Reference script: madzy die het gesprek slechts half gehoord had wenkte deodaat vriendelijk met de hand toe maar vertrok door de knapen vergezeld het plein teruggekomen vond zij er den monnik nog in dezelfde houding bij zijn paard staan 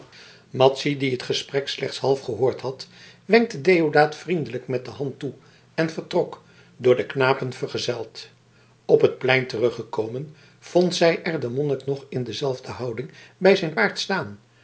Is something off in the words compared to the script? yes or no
yes